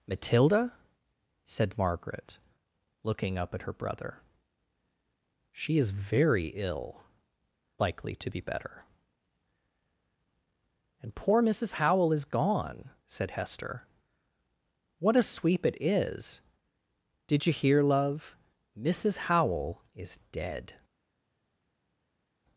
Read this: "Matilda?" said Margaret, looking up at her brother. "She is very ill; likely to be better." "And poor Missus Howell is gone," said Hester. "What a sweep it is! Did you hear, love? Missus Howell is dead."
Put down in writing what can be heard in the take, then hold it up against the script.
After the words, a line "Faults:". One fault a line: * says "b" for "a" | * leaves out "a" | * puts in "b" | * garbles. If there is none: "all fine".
"Matilda?" said Margaret, looking up at her brother. "She is very ill; likely to be better." "And poor Missus Howell is gone," said Hester. "What a sweep it is! Did you hear, love? Missus Howell is dead."
Faults:
all fine